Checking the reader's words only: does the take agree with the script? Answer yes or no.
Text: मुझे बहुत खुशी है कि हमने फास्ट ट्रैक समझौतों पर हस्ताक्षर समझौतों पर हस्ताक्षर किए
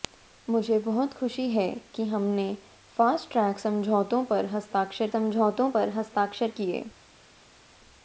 yes